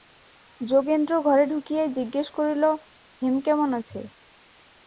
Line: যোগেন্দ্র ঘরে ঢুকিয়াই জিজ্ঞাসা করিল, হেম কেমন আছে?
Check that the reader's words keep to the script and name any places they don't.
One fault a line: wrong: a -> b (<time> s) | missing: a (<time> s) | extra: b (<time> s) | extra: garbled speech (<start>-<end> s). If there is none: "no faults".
no faults